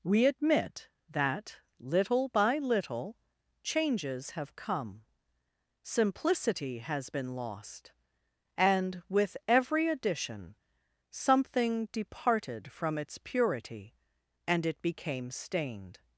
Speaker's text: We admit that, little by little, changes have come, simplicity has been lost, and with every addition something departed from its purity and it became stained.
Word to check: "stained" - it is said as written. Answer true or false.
true